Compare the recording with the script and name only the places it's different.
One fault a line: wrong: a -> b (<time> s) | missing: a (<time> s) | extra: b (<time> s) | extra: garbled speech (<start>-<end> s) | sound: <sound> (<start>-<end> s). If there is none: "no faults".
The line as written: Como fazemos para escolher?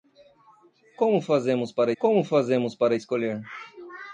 extra: como fazemos para (2.0 s)